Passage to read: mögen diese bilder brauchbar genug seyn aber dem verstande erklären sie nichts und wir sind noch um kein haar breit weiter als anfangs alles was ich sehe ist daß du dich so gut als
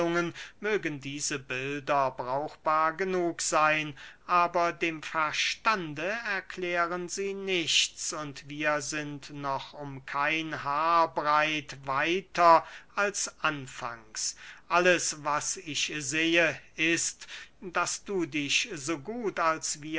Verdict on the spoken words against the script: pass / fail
pass